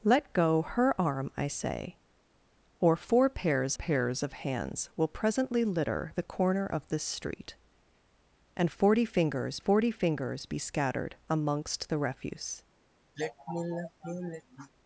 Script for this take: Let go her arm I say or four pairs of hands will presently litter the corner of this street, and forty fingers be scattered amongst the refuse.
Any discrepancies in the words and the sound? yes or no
yes